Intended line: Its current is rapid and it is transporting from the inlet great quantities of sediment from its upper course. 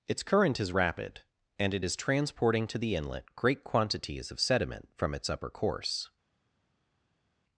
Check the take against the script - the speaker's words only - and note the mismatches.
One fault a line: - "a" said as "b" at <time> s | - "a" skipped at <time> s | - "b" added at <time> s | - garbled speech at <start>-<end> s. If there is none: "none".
- "from" said as "to" at 2.7 s